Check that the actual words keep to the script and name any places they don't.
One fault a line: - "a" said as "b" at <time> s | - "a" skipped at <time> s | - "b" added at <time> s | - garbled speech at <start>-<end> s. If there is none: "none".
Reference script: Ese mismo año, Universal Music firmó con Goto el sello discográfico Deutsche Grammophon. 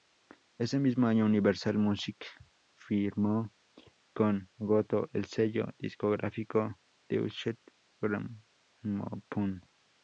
none